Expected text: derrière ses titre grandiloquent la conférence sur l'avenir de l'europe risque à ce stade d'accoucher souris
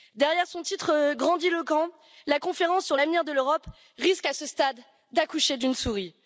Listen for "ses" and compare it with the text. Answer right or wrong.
wrong